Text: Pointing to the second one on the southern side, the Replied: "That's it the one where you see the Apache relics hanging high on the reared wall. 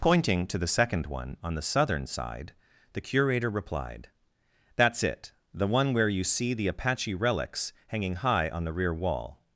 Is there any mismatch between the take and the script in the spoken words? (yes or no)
yes